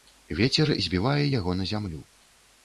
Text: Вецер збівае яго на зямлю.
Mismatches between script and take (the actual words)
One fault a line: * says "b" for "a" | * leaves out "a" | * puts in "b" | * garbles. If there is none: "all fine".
all fine